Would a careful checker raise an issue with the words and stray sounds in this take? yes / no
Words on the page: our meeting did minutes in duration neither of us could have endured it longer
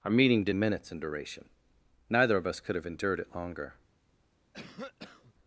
yes